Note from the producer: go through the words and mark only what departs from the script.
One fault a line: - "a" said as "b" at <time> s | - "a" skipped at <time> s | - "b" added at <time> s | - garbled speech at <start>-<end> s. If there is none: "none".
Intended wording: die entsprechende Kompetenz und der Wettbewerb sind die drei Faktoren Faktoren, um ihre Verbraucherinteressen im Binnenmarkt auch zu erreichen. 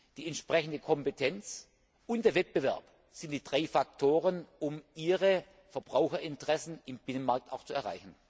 - "Faktoren" skipped at 4.5 s